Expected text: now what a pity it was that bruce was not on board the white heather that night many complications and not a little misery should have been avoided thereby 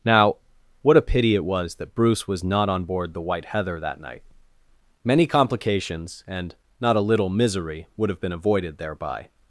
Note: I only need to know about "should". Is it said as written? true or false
false